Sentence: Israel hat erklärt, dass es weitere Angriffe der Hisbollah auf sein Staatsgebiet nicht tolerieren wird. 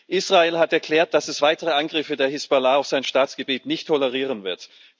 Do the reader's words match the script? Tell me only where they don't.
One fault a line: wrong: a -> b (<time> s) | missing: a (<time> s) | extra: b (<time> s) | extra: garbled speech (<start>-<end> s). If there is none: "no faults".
no faults